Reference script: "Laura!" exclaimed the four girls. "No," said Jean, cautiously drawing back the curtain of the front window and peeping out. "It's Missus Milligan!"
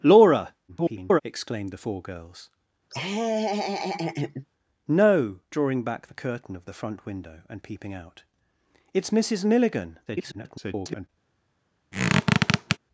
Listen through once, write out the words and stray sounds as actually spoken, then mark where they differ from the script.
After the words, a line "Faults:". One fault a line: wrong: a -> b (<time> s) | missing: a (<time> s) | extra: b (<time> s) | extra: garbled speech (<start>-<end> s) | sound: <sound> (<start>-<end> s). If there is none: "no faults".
"Laura!" [garbled] exclaimed the four girls. "No," drawing back the curtain of the front window and peeping out. "It's Missus Milligan!" [garbled]
Faults:
extra: garbled speech (0.7-1.2 s)
sound: laugh (2.9-4.5 s)
missing: said Jean cautiously (5.4 s)
extra: garbled speech (10.1-11.1 s)
sound: squeak (11.9-12.8 s)